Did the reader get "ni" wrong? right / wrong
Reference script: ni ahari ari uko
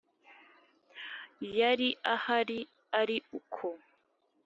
wrong